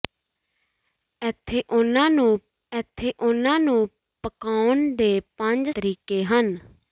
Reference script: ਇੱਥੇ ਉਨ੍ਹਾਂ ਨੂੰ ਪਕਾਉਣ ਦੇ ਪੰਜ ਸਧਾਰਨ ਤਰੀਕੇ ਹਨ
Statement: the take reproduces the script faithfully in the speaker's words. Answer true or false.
false